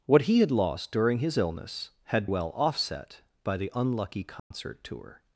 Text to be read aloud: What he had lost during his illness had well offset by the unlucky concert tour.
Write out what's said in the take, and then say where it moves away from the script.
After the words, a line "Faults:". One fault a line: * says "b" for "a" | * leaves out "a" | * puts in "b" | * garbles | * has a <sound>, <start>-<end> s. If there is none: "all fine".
What he had lost during his illness had well offset by the unlucky concert tour.
Faults:
* has a dropout, 4.4-4.5 s